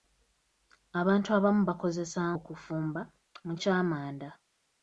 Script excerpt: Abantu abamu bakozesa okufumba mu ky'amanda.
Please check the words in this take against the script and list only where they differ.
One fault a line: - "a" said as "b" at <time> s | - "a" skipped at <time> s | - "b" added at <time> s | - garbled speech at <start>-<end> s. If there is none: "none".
none